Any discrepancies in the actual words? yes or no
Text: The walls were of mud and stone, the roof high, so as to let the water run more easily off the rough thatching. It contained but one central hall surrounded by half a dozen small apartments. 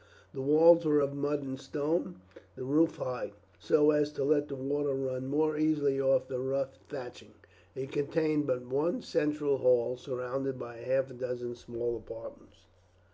no